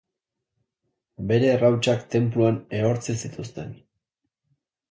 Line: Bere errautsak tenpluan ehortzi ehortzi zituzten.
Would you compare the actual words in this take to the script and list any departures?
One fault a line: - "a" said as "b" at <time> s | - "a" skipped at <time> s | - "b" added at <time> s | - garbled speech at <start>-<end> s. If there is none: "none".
- "ehortzi" skipped at 3.2 s